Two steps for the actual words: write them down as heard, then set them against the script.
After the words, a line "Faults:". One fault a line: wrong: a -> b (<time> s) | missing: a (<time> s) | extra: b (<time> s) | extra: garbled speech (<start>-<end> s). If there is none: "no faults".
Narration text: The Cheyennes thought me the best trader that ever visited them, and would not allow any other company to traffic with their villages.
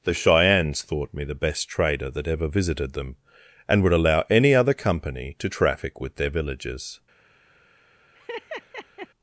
The Cheyennes thought me the best trader that ever visited them, and would allow any other company to traffic with their villages.
Faults:
missing: not (3.9 s)